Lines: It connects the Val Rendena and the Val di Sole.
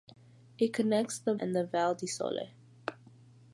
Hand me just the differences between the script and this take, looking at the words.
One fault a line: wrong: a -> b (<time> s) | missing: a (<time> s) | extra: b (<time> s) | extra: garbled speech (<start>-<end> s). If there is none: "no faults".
missing: Val Rendena (1.4 s)